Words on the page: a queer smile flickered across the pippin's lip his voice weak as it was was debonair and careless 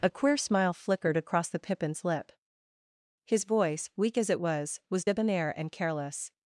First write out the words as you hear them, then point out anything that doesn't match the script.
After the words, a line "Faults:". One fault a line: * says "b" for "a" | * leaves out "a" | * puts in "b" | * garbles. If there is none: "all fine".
a queer smile flickered across the pippin's lip his voice weak as it was was debonair and careless
Faults:
all fine